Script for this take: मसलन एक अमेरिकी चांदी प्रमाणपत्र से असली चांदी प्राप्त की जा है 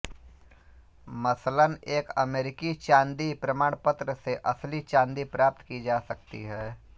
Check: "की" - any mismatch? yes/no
no